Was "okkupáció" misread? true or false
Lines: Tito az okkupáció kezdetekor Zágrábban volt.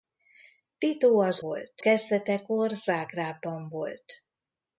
true